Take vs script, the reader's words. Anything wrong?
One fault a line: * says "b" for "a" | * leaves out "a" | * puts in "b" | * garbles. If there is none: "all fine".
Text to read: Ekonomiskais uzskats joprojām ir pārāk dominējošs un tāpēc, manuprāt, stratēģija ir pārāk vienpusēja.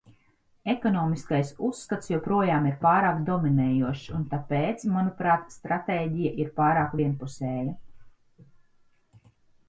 all fine